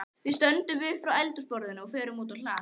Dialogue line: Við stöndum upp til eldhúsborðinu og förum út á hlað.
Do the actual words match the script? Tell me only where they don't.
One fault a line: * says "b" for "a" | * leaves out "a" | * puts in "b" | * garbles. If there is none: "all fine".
* says "frá" for "til"